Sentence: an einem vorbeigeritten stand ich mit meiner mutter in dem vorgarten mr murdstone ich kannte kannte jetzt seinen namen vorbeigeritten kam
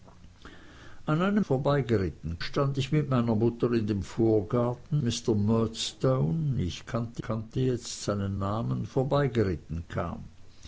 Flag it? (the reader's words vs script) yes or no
no